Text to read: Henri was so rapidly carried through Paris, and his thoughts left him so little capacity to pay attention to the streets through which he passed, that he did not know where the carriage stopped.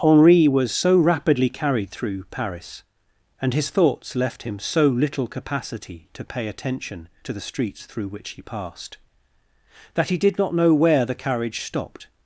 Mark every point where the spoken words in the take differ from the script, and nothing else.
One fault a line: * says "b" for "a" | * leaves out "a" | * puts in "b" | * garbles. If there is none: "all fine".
all fine